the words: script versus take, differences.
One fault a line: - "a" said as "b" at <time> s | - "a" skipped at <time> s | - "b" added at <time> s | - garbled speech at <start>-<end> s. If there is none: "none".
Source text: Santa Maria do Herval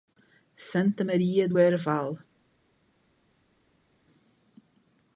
none